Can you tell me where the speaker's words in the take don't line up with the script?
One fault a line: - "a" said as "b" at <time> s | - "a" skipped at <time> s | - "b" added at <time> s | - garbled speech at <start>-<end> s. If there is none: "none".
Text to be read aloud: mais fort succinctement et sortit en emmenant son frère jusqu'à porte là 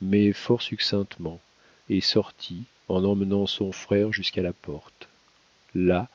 - "la" added at 4.4 s